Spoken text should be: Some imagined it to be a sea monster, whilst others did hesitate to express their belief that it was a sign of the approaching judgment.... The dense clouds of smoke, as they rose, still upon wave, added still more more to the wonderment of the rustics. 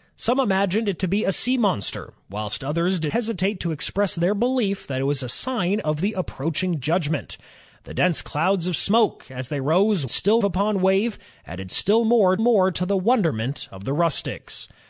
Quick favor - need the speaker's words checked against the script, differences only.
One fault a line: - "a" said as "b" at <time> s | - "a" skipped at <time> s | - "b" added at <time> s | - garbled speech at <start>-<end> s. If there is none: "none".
none